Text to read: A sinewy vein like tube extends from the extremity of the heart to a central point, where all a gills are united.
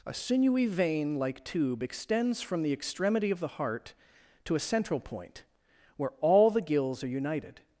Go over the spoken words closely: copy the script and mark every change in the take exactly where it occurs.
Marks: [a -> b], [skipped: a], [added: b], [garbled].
A sinewy vein like tube extends from the extremity of the heart to a central point, where all [a -> the] gills are united.